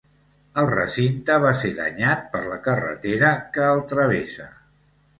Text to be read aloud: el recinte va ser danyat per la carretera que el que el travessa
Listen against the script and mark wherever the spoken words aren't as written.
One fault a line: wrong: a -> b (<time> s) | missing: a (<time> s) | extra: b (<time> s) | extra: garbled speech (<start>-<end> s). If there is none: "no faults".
missing: que el (3.9 s)